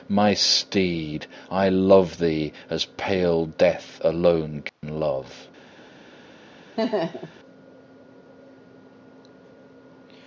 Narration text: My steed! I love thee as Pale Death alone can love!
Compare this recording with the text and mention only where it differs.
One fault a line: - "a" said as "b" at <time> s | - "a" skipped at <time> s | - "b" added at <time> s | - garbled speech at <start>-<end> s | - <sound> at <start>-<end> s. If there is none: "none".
- dropout at 4.7-4.8 s
- laugh at 6.8-7.4 s